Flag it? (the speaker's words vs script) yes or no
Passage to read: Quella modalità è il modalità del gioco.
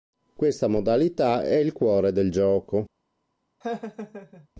yes